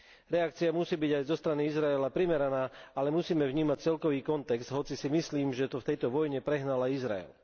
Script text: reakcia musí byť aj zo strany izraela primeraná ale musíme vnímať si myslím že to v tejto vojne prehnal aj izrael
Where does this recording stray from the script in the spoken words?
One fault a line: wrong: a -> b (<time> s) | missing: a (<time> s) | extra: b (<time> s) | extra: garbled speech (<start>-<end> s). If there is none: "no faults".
extra: celkový kontext hoci (3.8 s)